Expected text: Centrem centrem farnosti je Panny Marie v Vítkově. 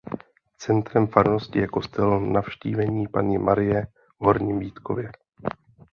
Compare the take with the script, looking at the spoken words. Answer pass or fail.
fail